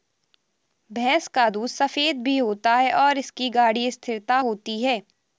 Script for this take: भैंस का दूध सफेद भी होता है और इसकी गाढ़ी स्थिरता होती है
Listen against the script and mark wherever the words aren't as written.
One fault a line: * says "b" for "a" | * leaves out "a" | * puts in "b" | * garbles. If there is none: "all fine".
all fine